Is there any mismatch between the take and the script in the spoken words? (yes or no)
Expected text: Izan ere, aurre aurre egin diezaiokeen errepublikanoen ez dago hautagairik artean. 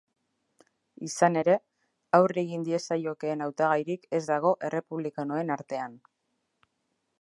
yes